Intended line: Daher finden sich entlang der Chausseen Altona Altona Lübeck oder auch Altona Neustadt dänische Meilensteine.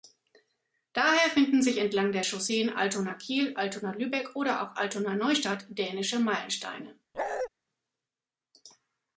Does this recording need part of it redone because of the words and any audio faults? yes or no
yes